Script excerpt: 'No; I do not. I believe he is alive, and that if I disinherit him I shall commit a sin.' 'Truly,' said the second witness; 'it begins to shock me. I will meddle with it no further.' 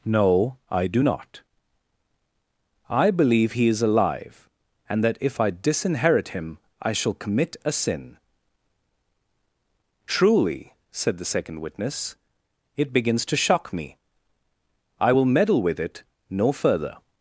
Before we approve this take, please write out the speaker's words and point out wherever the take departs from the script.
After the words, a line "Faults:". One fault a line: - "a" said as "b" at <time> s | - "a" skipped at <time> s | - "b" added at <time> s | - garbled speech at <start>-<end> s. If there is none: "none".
'No; I do not. I believe he is alive, and that if I disinherit him I shall commit a sin.' 'Truly,' said the second witness; 'it begins to shock me. I will meddle with it no further.'
Faults:
none